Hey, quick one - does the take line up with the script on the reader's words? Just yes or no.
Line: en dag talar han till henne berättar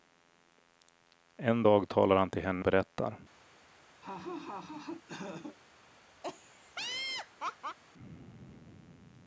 yes